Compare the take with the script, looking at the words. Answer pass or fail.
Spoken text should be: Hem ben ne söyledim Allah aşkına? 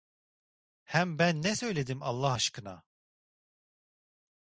pass